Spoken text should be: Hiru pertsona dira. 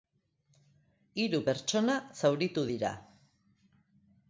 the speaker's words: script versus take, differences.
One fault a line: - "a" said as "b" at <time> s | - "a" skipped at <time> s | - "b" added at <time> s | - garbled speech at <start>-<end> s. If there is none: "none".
- "zauritu" added at 2.2 s